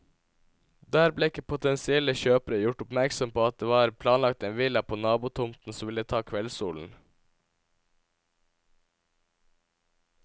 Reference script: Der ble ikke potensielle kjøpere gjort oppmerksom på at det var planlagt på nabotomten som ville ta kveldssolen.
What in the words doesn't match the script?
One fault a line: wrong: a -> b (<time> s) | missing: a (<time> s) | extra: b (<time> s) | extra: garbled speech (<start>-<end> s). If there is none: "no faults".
extra: en villa (4.5 s)